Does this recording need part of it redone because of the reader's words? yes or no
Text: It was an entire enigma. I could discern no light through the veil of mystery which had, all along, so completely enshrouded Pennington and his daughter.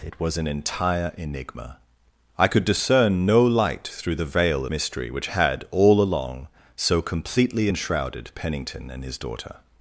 yes